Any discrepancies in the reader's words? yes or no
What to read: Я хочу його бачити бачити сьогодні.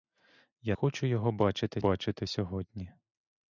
no